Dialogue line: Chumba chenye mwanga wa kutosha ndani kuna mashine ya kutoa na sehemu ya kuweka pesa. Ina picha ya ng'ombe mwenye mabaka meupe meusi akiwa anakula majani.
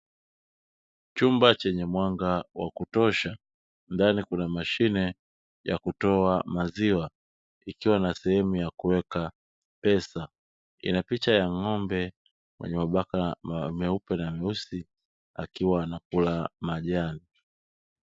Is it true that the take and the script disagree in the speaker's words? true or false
true